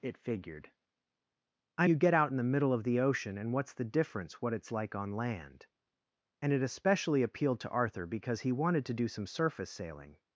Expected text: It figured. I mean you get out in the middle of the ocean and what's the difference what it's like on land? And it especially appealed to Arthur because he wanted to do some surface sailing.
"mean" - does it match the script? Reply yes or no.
no